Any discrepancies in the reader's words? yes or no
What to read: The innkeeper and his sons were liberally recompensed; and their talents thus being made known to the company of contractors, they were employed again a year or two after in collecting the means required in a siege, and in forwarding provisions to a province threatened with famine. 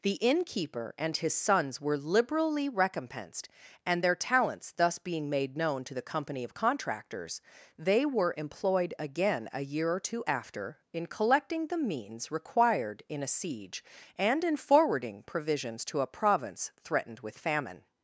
no